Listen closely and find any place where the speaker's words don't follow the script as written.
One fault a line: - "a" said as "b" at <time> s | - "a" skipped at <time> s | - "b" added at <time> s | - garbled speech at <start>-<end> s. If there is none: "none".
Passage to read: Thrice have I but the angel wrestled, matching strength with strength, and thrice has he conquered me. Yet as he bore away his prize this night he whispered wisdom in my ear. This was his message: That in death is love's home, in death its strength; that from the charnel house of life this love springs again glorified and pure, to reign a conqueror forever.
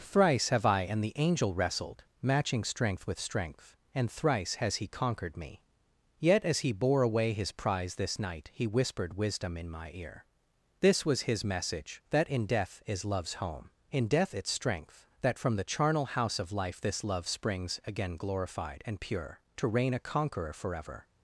- "but" said as "and" at 0.8 s